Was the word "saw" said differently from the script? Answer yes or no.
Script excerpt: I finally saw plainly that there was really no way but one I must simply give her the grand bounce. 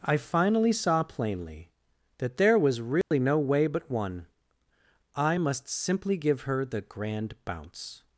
no